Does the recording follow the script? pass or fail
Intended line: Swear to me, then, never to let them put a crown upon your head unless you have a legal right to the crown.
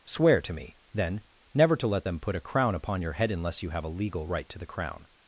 pass